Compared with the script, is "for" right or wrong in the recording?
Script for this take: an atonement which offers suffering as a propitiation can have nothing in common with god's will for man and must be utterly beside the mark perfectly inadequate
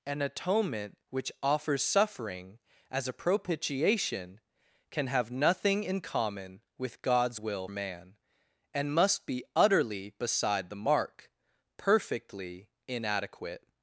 wrong